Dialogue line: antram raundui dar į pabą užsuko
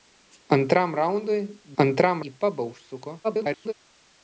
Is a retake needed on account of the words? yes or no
yes